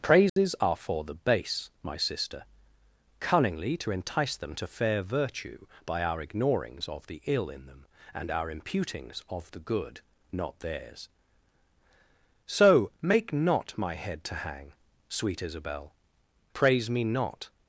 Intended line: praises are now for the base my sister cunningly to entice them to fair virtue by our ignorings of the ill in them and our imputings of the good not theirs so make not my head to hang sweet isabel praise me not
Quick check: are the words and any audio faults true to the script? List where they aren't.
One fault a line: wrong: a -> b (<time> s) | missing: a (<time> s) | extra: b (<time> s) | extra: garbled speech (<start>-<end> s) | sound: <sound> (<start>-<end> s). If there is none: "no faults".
sound: dropout (0.3-0.4 s)
missing: now (0.8 s)